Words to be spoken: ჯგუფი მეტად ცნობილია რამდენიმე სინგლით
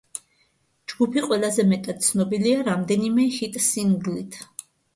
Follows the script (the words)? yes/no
no